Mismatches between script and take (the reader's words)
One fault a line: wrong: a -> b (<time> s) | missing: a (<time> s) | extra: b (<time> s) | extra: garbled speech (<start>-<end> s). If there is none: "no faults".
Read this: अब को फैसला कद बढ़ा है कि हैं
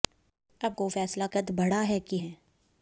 no faults